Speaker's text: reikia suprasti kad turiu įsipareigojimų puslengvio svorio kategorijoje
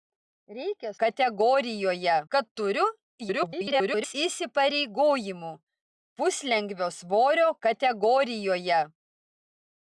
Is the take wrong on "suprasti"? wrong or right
wrong